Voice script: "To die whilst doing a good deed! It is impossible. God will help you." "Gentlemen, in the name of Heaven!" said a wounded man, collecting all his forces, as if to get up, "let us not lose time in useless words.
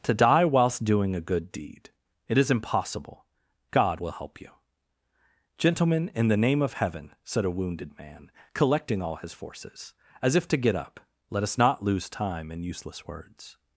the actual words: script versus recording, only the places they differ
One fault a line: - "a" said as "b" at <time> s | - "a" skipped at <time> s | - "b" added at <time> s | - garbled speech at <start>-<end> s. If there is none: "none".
none